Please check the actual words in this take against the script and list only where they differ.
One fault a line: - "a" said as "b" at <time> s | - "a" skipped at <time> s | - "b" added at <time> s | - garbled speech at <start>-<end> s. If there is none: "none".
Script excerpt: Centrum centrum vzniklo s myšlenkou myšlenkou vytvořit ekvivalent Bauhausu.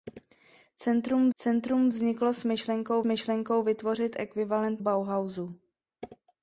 none